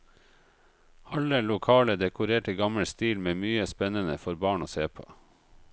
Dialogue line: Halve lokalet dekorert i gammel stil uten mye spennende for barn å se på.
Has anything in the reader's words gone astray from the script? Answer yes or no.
yes